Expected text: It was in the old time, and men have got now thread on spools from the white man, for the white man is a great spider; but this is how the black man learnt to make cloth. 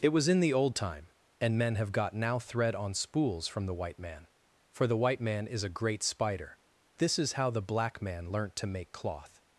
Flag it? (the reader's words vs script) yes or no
yes